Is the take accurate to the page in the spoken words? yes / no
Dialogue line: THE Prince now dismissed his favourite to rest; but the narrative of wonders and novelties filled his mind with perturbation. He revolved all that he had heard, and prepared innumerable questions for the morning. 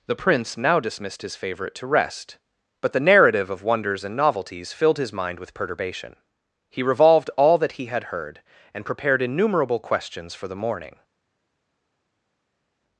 yes